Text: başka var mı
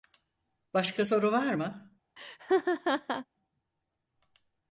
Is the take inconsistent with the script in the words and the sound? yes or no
yes